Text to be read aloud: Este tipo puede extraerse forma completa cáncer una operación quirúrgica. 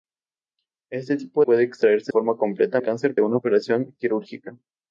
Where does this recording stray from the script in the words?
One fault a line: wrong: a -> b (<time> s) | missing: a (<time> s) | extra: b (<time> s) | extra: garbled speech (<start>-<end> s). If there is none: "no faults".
no faults